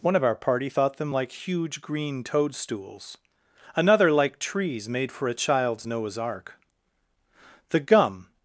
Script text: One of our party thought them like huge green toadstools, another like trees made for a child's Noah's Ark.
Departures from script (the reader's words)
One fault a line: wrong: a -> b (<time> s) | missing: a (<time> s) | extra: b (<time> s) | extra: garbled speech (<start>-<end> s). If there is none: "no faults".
extra: The gum (7.7 s)